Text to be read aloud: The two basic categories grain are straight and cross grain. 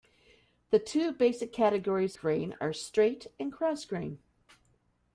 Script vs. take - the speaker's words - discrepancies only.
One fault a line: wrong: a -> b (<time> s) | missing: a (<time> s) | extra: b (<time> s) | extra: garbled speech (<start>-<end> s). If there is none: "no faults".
no faults